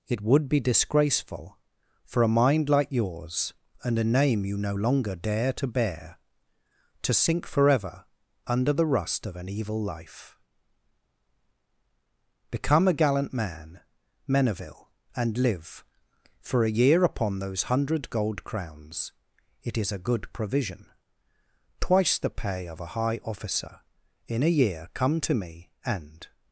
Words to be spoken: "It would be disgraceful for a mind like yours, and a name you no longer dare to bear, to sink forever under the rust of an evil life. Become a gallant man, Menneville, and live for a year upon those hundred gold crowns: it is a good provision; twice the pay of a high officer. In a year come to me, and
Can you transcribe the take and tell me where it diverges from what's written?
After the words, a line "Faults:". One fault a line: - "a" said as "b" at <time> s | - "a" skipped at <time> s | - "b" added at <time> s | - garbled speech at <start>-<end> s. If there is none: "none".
"It would be disgraceful for a mind like yours, and a name you no longer dare to bear, to sink forever under the rust of an evil life. Become a gallant man, Menneville, and live for a year upon those hundred gold crowns: it is a good provision; twice the pay of a high officer. In a year come to me, and
Faults:
none